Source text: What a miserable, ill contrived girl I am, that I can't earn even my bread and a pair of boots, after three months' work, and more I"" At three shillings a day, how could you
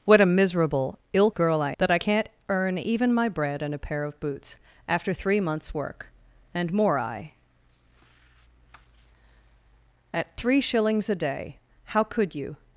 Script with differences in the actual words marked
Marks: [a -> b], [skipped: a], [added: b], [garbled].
What a miserable, ill [skipped: contrived] girl I [skipped: am,] that I can't earn even my bread and a pair of boots, after three months' work, and more I"" At three shillings a day, how could you